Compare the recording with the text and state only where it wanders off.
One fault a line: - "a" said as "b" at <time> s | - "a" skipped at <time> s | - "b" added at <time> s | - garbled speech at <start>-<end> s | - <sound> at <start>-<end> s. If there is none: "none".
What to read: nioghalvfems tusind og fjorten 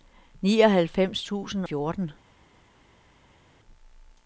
- "og" skipped at 1.6 s